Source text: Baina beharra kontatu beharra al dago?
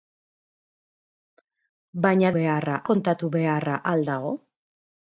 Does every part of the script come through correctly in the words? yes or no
yes